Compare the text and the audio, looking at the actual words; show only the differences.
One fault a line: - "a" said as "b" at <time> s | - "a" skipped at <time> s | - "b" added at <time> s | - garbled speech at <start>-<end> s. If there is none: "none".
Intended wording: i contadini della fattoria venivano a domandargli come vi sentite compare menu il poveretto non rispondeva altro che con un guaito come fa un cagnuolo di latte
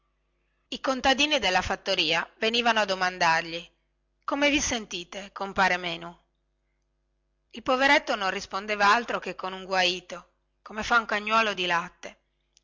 none